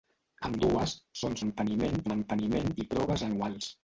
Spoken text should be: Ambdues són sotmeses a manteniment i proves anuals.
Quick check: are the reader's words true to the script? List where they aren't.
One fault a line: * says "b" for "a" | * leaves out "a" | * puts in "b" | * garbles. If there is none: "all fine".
* says "manteniment" for "sotmeses"